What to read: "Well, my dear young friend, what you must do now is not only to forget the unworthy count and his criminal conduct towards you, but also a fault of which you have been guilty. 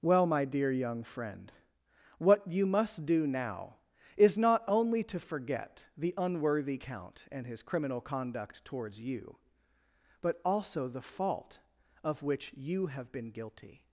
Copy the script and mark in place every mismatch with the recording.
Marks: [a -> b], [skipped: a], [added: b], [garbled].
"Well, my dear young friend, what you must do now is not only to forget the unworthy count and his criminal conduct towards you, but also [a -> the] fault of which you have been guilty.